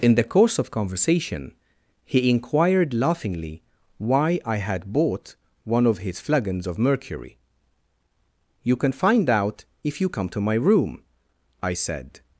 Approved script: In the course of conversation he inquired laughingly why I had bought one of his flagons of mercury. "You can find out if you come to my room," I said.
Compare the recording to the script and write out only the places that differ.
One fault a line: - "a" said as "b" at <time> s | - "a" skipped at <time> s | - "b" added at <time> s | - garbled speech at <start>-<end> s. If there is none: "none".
none